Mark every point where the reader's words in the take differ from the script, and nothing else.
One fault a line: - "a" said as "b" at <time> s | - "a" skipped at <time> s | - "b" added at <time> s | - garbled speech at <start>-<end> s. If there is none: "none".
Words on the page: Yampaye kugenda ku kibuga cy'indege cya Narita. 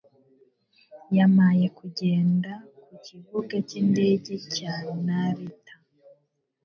none